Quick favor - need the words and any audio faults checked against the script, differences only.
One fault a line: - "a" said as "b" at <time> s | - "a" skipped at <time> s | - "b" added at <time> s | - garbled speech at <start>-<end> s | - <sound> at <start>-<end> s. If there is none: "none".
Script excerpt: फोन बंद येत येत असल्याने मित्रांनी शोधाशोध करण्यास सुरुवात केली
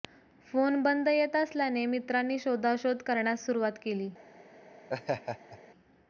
- "येत" skipped at 1.4 s
- laugh at 4.9-5.6 s